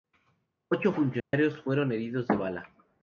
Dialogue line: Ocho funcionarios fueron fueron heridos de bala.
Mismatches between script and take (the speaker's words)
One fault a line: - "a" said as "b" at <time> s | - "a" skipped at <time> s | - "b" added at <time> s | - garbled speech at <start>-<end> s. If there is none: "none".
- "fueron" skipped at 1.9 s